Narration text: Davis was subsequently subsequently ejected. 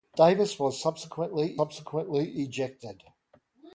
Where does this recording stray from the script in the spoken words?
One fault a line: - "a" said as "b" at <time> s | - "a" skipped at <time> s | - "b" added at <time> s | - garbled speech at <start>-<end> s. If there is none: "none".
none